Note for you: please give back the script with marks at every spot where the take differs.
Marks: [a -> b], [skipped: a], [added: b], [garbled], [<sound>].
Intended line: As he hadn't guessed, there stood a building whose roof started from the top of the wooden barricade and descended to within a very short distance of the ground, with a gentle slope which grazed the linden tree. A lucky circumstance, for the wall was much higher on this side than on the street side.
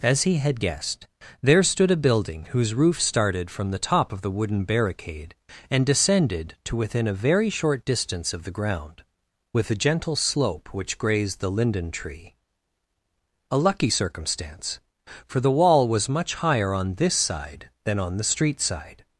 As he [hadn't -> had] guessed, there stood a building whose roof started from the top of the wooden barricade and descended to within a very short distance of the ground, with a gentle slope which grazed the linden tree. A lucky circumstance, for the wall was much higher on this side than on the street side.